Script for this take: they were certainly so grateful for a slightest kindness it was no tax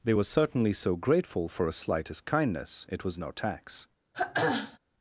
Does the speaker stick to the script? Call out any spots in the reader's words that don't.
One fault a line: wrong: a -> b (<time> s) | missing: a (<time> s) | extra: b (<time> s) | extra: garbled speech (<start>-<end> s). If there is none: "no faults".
no faults